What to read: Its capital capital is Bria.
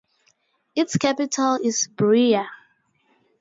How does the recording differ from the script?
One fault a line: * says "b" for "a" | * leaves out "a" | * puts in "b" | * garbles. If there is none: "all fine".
* leaves out "capital"